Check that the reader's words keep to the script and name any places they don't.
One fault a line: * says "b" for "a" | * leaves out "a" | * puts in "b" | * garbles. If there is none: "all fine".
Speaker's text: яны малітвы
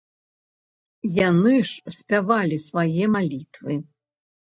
* puts in "ж спявалі свае"